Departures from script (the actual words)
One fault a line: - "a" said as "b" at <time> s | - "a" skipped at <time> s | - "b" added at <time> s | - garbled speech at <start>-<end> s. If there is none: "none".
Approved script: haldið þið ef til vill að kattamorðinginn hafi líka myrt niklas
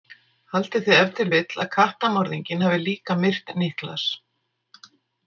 none